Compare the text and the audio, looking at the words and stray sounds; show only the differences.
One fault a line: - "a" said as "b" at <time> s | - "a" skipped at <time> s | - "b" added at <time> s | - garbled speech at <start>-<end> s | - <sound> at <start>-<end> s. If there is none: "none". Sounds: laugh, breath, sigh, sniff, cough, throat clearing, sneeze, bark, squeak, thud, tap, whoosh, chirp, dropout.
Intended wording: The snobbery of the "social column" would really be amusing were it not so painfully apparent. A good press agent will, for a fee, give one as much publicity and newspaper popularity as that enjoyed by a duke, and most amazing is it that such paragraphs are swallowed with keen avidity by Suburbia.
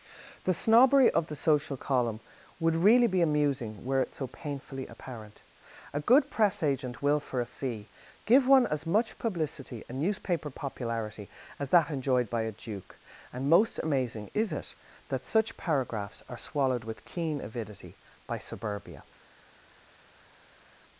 - "not" skipped at 4.1 s